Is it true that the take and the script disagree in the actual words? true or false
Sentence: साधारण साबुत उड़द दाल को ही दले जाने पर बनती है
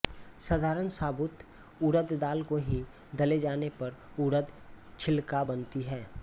true